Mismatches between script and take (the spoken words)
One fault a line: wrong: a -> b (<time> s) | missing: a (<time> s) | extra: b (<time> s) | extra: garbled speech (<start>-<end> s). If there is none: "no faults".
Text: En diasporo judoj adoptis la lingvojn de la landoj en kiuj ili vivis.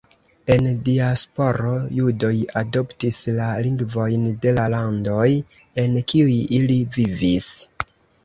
no faults